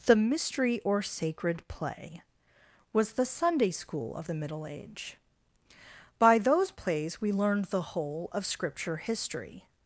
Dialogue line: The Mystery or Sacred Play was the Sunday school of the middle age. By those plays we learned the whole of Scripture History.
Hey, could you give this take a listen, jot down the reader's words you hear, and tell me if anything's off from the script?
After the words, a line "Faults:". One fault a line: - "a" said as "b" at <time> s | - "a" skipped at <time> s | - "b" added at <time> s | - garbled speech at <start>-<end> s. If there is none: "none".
The Mystery or Sacred Play was the Sunday school of the middle age. By those plays we learned the whole of Scripture History.
Faults:
none